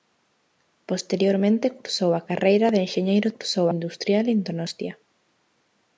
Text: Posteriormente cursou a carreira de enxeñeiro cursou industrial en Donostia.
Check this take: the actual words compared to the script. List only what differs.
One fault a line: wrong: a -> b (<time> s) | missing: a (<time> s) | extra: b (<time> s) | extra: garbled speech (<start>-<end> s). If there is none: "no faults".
no faults